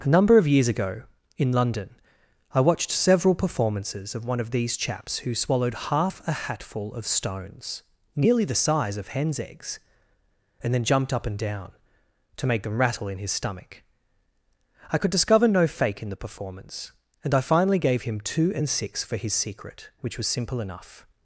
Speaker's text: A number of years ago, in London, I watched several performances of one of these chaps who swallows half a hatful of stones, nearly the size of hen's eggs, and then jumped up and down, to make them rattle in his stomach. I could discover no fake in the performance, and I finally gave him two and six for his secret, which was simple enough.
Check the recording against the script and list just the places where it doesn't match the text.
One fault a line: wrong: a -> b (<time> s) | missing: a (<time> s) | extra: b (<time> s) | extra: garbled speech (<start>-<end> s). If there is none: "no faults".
wrong: swallows -> swallowed (5.3 s)